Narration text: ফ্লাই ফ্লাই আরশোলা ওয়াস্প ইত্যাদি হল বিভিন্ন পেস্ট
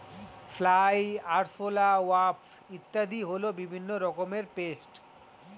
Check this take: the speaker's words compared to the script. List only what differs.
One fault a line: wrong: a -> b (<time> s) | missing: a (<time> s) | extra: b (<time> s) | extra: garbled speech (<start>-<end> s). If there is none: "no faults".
missing: ফ্লাই (1.0 s)
extra: রকমের (4.0 s)